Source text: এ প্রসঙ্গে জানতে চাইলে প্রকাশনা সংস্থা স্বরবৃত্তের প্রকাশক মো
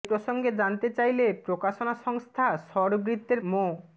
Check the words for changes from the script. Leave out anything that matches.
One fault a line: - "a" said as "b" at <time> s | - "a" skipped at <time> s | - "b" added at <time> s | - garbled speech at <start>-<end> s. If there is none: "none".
- "প্রকাশক" skipped at 3.4 s